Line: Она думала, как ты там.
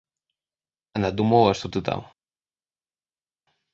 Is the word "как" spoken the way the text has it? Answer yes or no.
no